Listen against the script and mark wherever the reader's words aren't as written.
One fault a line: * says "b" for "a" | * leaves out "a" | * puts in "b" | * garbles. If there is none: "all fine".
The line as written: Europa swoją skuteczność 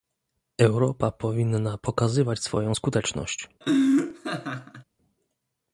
* puts in "powinna pokazywać"